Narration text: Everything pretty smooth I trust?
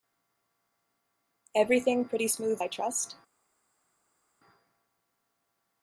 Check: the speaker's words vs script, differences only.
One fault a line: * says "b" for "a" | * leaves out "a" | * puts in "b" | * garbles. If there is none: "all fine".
all fine